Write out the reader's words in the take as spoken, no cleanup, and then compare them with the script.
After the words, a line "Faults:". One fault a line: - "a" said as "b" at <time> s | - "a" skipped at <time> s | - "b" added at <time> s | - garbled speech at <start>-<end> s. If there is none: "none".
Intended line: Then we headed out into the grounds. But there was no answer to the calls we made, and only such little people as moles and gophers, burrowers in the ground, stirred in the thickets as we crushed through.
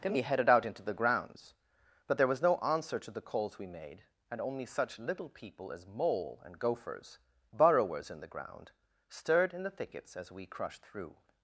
Then we headed out into the grounds. But there was no answer to the calls we made, and only such little people as mole and gophers, burrowers in the ground, stirred in the thickets as we crushed through.
Faults:
- "moles" said as "mole" at 5.9 s